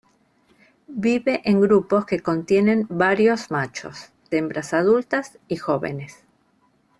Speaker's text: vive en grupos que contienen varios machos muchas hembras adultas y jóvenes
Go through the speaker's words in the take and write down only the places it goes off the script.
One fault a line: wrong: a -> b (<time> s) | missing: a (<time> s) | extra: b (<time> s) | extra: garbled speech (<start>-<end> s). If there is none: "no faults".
missing: muchas (4.1 s)